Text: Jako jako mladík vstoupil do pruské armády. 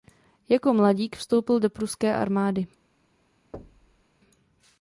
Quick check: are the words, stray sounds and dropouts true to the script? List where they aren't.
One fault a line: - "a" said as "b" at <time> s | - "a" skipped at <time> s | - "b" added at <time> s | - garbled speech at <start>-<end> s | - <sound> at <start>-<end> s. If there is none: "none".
- "jako" skipped at 0.7 s
- thud at 3.5-4.0 s